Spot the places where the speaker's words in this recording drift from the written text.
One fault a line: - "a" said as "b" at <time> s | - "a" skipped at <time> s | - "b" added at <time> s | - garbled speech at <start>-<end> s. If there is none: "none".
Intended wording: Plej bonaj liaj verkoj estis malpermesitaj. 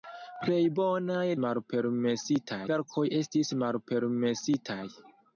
- "liaj" said as "malpermesitaj" at 1.4 s